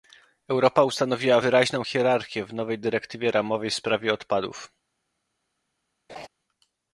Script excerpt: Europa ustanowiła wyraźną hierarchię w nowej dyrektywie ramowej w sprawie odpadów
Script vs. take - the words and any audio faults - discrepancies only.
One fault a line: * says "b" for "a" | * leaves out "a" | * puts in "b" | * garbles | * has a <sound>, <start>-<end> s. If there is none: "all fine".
* has a laugh, 6.1-6.3 s